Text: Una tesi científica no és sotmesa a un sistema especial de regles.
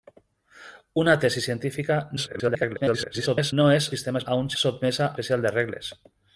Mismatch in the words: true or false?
true